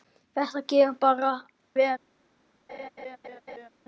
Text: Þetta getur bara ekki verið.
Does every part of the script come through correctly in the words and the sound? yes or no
no